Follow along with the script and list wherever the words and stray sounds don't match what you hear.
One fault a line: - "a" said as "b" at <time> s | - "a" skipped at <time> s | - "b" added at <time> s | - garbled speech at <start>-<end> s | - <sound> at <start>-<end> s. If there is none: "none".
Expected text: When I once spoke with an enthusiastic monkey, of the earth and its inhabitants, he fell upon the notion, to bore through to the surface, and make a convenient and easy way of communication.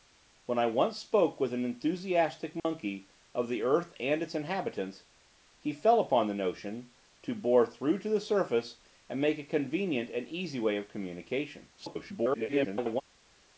- dropout at 2.6-2.6 s
- garbled speech at 11.8-13.0 s